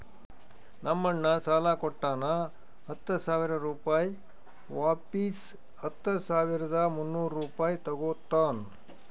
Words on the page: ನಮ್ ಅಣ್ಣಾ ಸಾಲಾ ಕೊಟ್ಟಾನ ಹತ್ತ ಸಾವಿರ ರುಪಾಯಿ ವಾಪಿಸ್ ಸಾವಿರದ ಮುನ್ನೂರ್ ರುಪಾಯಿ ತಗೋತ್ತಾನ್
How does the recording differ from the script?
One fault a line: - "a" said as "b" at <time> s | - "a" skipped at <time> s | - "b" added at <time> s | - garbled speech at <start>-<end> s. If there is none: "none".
- "ಹತ್ತ" added at 5.8 s